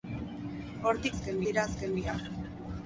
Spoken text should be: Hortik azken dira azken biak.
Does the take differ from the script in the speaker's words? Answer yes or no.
no